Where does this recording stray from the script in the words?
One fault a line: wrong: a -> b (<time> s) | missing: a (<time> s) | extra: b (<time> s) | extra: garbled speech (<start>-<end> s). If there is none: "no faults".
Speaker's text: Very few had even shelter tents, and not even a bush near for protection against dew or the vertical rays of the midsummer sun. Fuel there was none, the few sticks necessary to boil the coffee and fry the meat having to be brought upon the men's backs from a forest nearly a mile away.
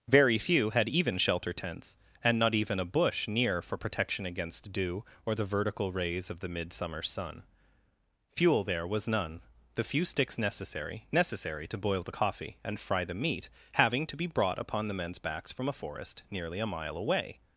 extra: necessary (11.1 s)